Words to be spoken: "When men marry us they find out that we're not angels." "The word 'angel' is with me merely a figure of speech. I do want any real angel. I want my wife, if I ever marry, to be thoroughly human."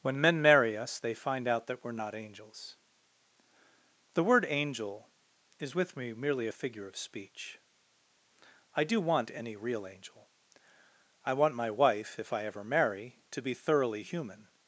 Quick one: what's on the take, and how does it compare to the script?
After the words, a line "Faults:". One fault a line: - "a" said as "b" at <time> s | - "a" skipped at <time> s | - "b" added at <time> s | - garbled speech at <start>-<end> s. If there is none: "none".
"When men marry us they find out that we're not angels." "The word 'angel' is with me merely a figure of speech. I do want any real angel. I want my wife, if I ever marry, to be thoroughly human."
Faults:
none